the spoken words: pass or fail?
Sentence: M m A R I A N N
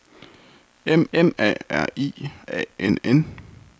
pass